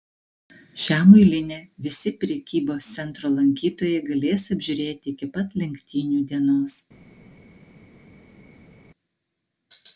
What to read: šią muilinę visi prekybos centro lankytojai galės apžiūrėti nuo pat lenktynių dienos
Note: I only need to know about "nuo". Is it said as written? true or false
false